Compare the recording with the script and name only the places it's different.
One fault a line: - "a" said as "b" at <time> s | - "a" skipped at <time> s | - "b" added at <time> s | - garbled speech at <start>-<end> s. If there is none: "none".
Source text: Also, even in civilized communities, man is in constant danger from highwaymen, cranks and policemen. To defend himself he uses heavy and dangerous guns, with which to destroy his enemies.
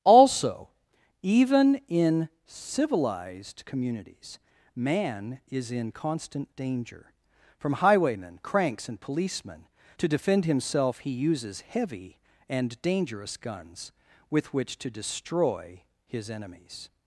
none